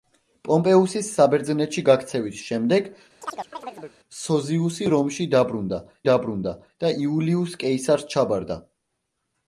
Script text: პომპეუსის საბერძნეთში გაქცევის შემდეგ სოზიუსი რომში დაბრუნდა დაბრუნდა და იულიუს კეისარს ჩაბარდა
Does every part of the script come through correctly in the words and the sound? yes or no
no